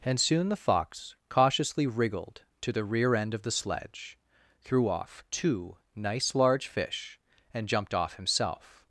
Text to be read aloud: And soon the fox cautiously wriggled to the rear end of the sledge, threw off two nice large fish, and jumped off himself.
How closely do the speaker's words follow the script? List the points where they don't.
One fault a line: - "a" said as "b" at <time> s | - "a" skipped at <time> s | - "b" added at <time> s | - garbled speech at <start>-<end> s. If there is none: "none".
none